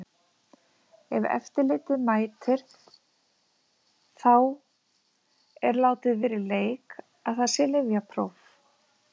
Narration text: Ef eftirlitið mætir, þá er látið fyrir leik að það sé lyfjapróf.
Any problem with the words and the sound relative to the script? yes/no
no